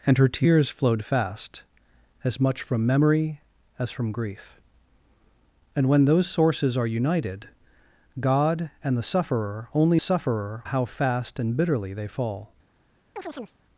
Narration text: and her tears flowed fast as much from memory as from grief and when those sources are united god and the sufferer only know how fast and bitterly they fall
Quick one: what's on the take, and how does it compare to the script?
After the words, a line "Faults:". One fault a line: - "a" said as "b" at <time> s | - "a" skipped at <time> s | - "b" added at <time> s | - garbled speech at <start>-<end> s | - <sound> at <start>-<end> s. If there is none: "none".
and her tears flowed fast as much from memory as from grief and when those sources are united god and the sufferer only sufferer how fast and bitterly they fall
Faults:
- "know" said as "sufferer" at 10.0 s
- chirp at 13.2-13.6 s